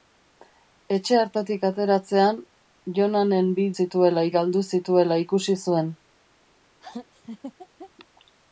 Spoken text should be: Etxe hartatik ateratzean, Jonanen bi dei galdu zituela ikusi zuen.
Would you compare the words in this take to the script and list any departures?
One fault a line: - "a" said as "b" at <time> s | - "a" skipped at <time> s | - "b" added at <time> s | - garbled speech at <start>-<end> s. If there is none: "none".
- "dei" said as "zituela" at 3.8 s